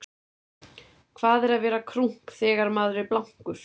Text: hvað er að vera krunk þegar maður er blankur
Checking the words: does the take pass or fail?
pass